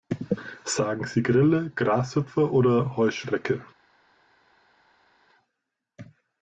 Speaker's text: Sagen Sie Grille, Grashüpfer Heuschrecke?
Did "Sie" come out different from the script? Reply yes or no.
no